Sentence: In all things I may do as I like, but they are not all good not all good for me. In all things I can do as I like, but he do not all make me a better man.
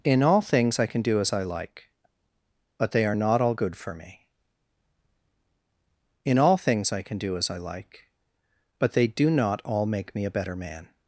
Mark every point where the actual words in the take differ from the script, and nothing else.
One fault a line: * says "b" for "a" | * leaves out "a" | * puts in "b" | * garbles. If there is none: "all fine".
* says "can" for "may"
* leaves out "not all good"
* says "they" for "he"